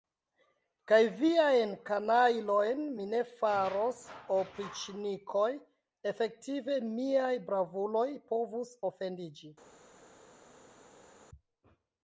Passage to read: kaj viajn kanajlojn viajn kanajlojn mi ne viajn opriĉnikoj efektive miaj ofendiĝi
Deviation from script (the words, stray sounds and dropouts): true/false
true